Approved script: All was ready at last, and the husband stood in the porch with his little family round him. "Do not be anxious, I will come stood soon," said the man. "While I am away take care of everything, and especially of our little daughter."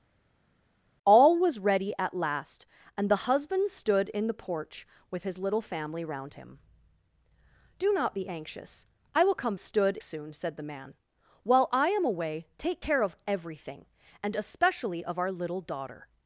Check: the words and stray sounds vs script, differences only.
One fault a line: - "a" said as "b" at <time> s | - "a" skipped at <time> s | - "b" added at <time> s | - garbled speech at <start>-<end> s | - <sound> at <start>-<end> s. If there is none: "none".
none